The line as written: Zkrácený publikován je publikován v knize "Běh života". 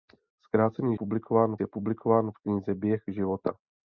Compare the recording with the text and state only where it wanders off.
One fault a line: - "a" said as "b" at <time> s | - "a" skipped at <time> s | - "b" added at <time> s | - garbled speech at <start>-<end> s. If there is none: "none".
none